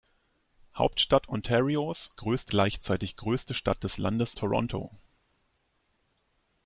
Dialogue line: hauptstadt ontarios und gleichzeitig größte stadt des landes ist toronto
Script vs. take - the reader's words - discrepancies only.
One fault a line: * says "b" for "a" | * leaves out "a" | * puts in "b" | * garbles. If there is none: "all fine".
* says "größte" for "und"
* leaves out "ist"